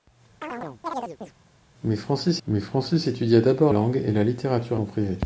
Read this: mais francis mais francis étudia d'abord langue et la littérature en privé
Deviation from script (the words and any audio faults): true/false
true